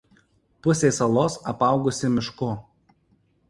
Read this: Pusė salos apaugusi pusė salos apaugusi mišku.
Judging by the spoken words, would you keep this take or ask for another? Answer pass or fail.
fail